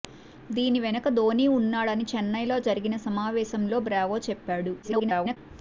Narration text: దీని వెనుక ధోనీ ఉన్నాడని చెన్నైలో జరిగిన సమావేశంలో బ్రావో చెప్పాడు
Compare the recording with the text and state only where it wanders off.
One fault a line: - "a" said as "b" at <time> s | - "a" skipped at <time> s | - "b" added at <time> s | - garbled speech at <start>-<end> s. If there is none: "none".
- garbled speech at 4.8-5.4 s